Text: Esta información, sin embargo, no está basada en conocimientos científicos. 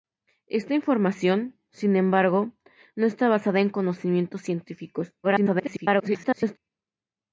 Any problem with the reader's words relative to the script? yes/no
yes